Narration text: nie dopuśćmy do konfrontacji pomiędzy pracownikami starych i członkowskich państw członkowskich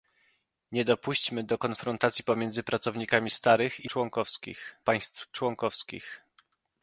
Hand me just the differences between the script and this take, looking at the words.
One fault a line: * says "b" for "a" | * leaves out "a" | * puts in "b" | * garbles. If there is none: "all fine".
all fine